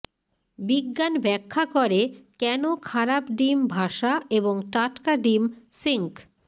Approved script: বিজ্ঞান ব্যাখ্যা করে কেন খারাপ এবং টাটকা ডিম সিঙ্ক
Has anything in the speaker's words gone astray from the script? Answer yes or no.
yes